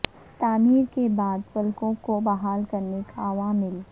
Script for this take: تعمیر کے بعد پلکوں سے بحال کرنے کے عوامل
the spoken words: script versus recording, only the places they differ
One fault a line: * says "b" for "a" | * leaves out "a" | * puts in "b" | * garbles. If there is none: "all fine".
* says "کو" for "سے"